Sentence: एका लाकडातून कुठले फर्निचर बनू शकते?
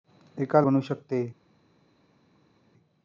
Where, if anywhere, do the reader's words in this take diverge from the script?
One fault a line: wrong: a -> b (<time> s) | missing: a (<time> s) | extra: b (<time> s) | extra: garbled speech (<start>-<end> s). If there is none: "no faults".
missing: लाकडातून कुठले फर्निचर (0.6 s)